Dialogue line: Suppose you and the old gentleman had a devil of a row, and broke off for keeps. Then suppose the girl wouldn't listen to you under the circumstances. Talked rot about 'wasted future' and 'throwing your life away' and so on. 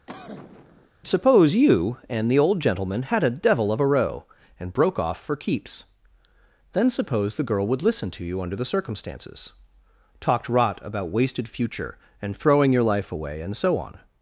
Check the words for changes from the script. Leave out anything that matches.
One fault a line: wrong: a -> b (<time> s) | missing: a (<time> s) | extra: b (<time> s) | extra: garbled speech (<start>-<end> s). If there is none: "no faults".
wrong: wouldn't -> would (7.7 s)